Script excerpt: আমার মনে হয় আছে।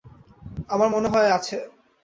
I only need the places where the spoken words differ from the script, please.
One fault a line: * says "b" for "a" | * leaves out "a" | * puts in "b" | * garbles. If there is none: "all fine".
all fine